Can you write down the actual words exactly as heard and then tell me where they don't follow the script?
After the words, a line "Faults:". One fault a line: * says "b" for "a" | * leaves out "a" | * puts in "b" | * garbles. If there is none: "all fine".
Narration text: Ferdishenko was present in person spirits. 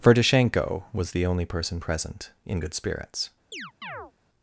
Ferdishenko was the only person present in good spirits.
Faults:
* puts in "the only person"
* says "good" for "person"